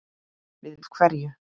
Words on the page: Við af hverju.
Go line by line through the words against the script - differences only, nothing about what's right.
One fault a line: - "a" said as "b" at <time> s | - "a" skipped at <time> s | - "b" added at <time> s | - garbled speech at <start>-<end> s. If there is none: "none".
none